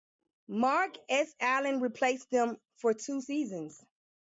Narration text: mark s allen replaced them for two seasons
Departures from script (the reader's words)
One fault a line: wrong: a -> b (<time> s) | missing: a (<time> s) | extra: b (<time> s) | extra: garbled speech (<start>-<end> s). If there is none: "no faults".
no faults